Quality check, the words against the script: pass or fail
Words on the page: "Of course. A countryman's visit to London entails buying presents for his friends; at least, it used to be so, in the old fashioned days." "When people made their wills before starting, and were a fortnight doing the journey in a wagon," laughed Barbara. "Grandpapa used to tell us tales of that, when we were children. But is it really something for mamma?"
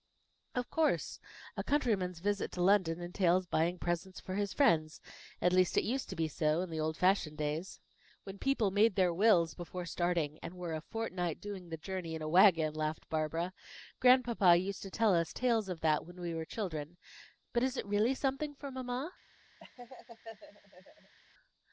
pass